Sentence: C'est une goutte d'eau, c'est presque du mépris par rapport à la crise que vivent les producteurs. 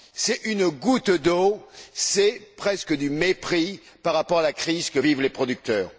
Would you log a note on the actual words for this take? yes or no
no